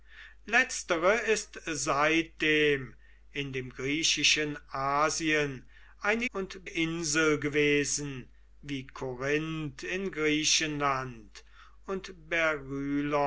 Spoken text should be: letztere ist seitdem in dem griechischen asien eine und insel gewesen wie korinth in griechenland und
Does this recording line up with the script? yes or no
yes